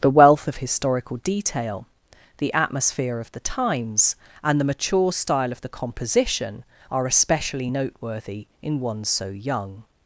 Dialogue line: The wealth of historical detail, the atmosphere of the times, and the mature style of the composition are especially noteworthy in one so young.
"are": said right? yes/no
yes